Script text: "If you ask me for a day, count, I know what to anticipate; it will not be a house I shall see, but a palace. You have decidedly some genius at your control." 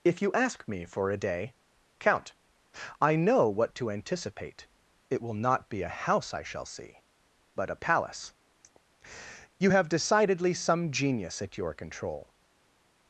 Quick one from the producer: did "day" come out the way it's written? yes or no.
yes